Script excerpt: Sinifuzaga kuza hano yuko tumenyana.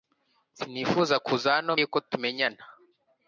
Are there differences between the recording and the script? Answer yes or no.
no